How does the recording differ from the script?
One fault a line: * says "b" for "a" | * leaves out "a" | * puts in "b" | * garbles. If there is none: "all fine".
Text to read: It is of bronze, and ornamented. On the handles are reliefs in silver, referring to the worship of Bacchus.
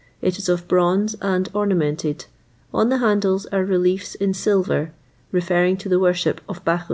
all fine